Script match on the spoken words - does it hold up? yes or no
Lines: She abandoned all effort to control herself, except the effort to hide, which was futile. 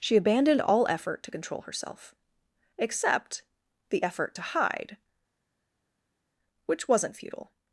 no